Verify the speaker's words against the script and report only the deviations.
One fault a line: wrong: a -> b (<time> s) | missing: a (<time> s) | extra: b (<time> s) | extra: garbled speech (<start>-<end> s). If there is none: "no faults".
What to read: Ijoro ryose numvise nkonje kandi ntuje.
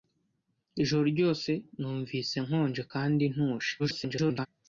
extra: garbled speech (3.8-4.5 s)